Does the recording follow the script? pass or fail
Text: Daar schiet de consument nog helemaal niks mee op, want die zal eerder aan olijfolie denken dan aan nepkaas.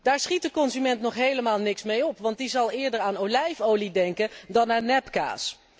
pass